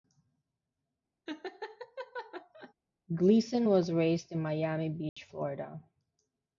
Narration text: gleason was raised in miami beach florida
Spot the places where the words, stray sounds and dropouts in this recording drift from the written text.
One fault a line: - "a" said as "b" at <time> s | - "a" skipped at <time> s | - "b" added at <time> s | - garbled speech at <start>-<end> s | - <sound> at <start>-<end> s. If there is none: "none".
- laugh at 1.3-2.7 s
- dropout at 5.1-5.2 s